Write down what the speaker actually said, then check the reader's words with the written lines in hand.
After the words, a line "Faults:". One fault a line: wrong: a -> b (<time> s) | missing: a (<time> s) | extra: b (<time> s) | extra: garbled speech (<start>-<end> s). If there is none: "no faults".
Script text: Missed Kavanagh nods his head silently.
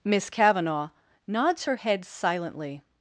Miss Kavanagh nods her head silently.
Faults:
wrong: Missed -> Miss (0.0 s)
wrong: his -> her (1.6 s)